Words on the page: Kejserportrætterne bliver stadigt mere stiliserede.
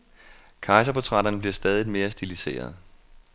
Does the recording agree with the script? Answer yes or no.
yes